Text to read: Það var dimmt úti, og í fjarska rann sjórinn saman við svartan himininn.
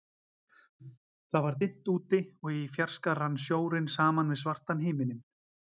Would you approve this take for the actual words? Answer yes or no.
yes